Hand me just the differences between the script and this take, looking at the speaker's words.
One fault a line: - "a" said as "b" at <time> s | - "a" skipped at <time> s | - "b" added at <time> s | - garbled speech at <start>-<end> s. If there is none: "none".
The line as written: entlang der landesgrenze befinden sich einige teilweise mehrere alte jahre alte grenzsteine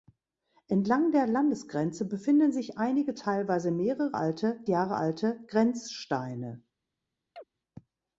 none